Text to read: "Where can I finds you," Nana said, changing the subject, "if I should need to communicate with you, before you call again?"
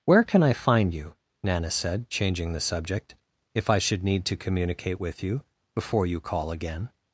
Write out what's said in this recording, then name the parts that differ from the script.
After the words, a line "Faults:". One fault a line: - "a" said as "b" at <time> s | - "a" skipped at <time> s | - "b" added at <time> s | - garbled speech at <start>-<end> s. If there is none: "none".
"Where can I find you," Nana said, changing the subject, "if I should need to communicate with you, before you call again?"
Faults:
- "finds" said as "find" at 0.5 s